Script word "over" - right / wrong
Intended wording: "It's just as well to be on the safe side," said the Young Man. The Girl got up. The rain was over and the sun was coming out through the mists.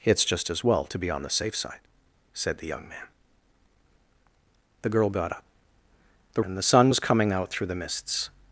wrong